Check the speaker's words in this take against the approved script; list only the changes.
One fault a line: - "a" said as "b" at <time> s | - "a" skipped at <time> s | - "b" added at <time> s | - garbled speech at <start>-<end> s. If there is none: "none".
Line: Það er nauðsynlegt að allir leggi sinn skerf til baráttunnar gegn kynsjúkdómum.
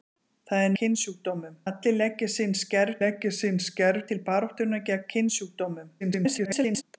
- "nauðsynlegt" said as "kynsjúkdómum" at 0.8 s
- "leggi sinn skerf" added at 3.0 s
- garbled speech at 6.0-6.8 s